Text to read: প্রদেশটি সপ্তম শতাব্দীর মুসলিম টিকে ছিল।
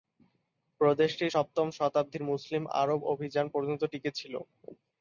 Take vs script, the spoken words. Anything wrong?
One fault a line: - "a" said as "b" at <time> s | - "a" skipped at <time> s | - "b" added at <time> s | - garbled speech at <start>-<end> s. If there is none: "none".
- "আরব অভিযান পর্যন্ত" added at 2.8 s